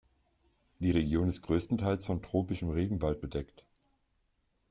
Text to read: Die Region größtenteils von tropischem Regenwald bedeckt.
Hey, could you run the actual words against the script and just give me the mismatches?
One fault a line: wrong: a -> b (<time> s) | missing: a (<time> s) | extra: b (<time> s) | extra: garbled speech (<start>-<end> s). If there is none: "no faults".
extra: ist (1.3 s)